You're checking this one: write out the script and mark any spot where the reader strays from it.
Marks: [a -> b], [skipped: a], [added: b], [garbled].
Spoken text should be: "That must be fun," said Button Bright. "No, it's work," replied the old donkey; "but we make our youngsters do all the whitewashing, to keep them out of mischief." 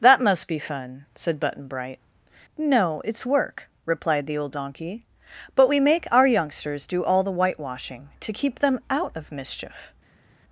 "That must be fun," said Button Bright. "No, it's work," replied the old donkey; "but we make our youngsters do all the whitewashing, to keep them out of mischief."